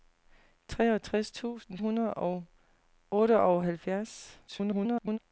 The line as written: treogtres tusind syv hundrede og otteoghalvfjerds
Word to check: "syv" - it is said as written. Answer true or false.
false